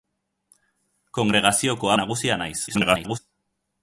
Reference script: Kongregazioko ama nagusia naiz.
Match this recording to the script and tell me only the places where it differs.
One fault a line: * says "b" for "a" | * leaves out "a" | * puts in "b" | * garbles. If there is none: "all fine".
* leaves out "ama"
* garbles